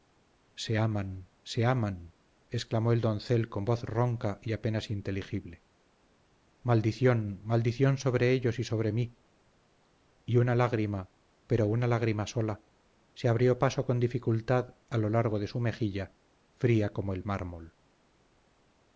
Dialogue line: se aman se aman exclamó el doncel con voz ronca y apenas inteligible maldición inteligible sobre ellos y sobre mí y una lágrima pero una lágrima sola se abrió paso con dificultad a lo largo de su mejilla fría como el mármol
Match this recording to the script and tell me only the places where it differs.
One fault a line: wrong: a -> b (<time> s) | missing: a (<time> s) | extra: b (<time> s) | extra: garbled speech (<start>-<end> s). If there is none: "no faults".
wrong: inteligible -> maldición (7.4 s)